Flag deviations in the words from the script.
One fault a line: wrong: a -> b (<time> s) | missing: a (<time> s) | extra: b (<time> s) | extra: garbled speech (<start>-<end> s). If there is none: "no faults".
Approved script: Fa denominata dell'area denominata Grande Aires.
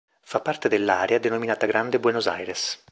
wrong: denominata -> parte (0.4 s)
extra: Buenos (2.0 s)